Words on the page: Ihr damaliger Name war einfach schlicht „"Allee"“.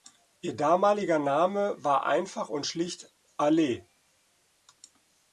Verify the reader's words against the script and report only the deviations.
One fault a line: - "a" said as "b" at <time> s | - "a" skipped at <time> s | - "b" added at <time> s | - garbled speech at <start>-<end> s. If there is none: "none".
- "und" added at 2.5 s